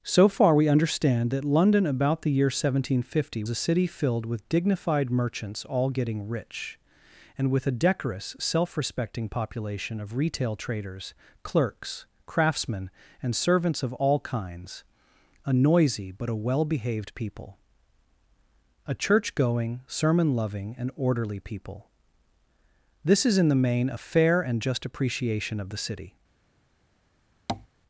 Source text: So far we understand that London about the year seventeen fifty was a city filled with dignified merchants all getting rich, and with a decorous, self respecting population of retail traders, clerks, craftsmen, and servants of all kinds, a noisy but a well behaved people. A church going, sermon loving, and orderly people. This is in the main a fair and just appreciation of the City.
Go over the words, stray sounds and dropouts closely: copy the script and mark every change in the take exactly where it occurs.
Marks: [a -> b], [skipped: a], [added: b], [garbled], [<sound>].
So far we understand that London about the year seventeen fifty [skipped: was] a city filled with dignified merchants all getting rich, and with a decorous, self respecting population of retail traders, clerks, craftsmen, and servants of all kinds, a noisy but a well behaved people. A church going, sermon loving, and orderly people. This is in the main a fair and just appreciation of the City. [tap]